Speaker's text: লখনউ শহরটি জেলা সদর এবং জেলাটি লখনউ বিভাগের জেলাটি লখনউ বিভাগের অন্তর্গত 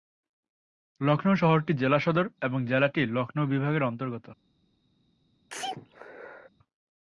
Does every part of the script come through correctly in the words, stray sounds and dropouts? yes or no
no